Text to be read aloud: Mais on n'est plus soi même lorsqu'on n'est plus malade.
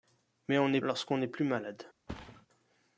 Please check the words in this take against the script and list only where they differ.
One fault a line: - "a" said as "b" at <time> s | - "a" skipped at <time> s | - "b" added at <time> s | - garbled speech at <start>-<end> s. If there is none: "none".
- "plus soi même" skipped at 0.8 s